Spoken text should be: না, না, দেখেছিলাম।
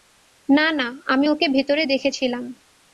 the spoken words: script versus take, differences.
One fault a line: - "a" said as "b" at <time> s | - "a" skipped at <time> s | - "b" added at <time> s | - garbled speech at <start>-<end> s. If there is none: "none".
- "আমি ওকে ভেতরে" added at 1.1 s